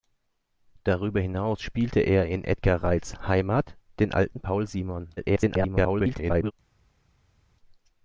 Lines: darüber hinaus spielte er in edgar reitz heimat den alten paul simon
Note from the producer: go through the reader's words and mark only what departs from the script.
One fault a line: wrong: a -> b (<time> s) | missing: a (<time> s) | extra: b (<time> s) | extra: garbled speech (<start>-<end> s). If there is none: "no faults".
extra: garbled speech (5.2-6.5 s)